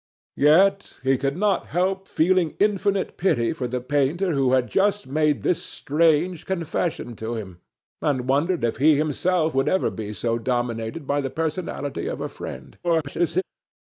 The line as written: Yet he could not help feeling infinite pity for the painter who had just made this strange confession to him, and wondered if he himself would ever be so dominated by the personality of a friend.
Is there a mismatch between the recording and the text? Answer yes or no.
yes